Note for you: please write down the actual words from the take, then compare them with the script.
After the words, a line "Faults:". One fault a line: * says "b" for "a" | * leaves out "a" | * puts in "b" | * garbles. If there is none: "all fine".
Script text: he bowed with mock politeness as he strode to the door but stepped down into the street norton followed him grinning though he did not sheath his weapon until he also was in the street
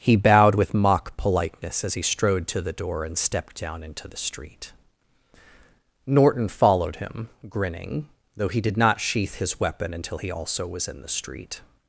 he bowed with mock politeness as he strode to the door and stepped down into the street norton followed him grinning though he did not sheath his weapon until he also was in the street
Faults:
* says "and" for "but"